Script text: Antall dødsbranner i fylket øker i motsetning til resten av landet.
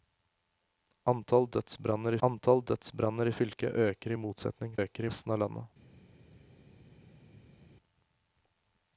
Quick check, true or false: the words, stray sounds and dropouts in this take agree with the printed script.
false